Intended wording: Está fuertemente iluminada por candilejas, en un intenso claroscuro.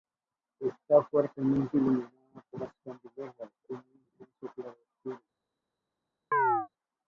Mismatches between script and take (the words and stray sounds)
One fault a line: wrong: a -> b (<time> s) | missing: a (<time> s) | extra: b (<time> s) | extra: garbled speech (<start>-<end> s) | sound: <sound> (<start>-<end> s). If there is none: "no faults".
extra: las (2.6 s)
sound: chirp (6.3-6.7 s)